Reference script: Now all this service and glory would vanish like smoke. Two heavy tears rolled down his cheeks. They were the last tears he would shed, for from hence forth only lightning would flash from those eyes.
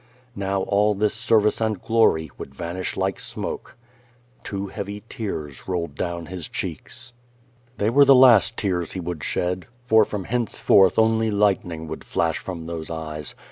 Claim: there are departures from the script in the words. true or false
false